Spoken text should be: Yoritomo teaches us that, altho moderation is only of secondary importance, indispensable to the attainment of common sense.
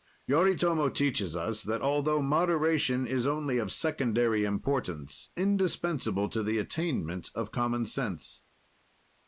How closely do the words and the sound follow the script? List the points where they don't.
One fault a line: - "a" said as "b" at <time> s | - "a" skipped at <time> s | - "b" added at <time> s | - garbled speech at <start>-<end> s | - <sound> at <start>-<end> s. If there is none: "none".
none